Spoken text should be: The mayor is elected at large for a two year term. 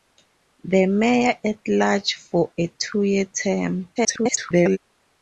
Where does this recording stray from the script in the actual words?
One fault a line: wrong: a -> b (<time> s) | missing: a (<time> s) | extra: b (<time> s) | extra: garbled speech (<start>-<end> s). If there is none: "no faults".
missing: is elected (1.4 s)
extra: garbled speech (4.0-4.8 s)